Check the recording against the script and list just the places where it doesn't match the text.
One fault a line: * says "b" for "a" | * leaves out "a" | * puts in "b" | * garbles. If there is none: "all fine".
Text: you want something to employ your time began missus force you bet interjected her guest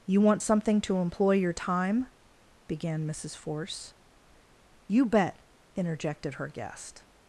all fine